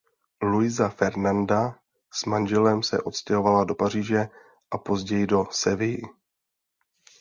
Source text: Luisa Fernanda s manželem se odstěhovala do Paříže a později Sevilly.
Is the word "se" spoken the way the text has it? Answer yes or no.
yes